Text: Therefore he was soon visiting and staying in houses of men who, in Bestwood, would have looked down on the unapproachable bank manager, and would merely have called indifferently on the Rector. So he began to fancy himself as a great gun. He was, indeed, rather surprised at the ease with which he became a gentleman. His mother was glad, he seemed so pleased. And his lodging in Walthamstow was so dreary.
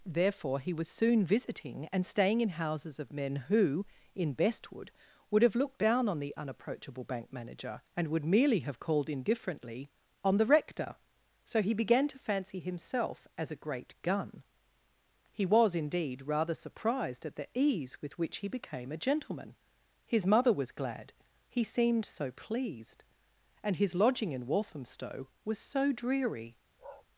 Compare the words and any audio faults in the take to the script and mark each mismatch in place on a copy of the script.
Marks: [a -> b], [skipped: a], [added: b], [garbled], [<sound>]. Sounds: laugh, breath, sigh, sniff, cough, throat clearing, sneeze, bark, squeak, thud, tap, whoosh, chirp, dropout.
Therefore he was soon visiting and staying in houses of men who, in Bestwood, would have looked down on the unapproachable bank manager, and would merely have called indifferently on the Rector. So he began to fancy himself as a great gun. He was, indeed, rather surprised at the ease with which he became a gentleman. His mother was glad, he seemed so pleased. And his lodging in Walthamstow was so dreary. [bark]